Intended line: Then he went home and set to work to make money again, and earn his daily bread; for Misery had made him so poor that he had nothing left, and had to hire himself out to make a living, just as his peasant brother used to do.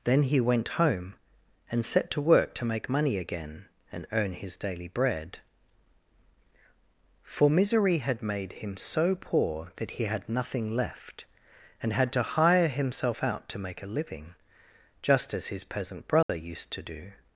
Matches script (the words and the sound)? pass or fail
fail